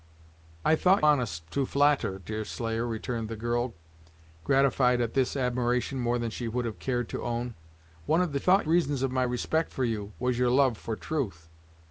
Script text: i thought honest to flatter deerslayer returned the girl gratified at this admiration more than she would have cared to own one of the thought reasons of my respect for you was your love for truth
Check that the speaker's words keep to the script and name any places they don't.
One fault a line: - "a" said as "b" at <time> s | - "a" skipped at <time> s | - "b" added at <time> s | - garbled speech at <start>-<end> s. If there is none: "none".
none